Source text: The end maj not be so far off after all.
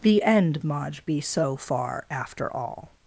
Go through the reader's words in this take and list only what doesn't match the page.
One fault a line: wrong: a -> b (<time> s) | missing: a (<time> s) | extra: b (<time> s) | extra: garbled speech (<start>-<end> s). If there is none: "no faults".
missing: not (1.0 s)
missing: off (2.1 s)